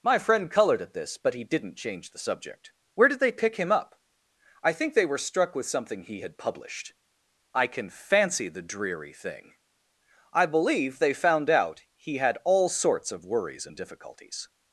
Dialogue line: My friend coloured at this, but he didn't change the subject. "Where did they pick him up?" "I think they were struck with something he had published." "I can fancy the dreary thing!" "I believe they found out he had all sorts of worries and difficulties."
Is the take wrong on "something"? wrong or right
right